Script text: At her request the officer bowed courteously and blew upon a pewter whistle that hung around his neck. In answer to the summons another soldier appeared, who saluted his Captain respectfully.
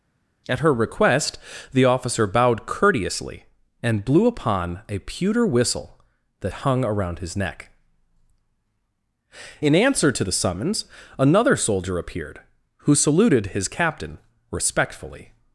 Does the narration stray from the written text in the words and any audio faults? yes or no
no